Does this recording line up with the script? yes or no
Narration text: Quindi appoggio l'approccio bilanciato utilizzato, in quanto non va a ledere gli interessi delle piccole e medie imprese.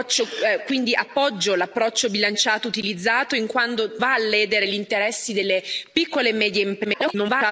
no